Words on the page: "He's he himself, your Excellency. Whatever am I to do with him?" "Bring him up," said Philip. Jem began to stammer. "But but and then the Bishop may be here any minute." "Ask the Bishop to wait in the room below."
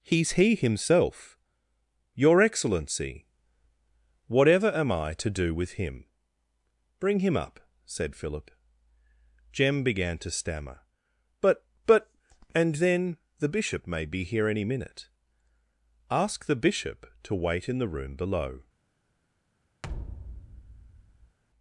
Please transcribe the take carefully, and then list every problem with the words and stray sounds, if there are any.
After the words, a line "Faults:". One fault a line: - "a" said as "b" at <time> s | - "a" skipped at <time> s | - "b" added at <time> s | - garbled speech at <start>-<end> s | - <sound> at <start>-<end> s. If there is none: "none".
"He's he himself, your Excellency. Whatever am I to do with him?" "Bring him up," said Philip. Jem began to stammer. "But but and then the Bishop may be here any minute." "Ask the Bishop to wait in the room below."
Faults:
- thud at 19.8-21.4 s